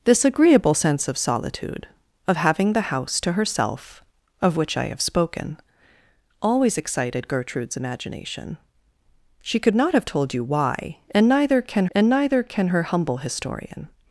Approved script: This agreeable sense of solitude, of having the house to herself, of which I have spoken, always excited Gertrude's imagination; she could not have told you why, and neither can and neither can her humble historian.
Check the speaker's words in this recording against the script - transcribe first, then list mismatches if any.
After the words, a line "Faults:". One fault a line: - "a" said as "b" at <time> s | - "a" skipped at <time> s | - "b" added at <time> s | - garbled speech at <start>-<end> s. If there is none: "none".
This agreeable sense of solitude, of having the house to herself, of which I have spoken, always excited Gertrude's imagination; she could not have told you why, and neither can and neither can her humble historian.
Faults:
none